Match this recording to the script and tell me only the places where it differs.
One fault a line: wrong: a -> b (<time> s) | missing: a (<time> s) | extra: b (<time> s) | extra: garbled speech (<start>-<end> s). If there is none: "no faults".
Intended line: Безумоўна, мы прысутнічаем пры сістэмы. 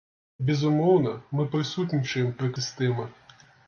no faults